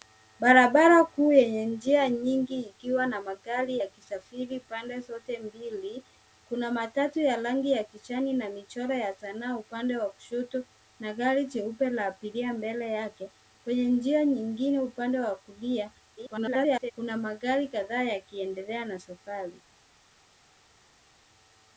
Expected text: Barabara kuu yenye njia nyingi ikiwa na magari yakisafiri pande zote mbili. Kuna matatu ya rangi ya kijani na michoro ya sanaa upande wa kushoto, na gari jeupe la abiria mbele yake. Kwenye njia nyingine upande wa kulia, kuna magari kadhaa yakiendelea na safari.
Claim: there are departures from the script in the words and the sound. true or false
true